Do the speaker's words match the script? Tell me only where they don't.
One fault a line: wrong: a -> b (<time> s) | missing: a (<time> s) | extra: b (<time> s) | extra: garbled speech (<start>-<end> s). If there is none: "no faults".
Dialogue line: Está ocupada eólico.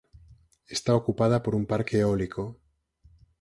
extra: por un parque (1.4 s)